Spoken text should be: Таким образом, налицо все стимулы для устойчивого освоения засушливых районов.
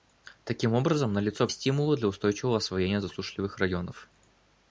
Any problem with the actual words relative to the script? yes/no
yes